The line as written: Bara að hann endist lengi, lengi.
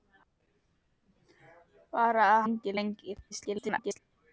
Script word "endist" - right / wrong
wrong